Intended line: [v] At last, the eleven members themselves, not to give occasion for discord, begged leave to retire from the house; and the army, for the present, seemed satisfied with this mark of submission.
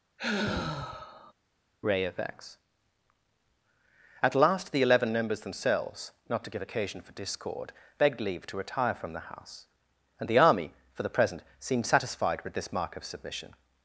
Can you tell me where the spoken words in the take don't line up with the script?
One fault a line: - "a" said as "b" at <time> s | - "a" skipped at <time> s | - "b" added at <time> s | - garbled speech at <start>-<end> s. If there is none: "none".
- "v" said as "ray of x" at 1.8 s